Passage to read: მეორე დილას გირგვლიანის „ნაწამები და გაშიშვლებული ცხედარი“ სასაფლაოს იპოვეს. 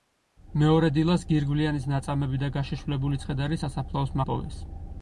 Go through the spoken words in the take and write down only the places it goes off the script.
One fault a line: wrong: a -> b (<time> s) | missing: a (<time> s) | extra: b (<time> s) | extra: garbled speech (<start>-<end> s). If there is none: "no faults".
no faults